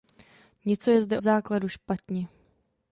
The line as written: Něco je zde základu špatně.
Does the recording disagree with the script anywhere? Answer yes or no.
no